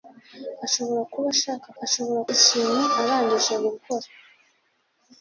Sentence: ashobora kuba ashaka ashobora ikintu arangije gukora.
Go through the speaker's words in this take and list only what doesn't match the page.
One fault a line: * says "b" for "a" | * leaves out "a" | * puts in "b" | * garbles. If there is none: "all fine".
all fine